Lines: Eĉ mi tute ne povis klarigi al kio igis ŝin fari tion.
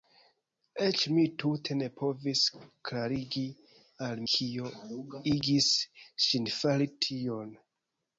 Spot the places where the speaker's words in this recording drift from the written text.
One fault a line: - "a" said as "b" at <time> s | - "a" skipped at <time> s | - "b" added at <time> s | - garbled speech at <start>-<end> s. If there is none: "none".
none